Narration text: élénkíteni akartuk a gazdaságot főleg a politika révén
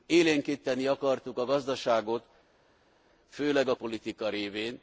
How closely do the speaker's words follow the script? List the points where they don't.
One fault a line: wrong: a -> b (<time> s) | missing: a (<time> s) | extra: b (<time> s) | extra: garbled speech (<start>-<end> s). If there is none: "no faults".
no faults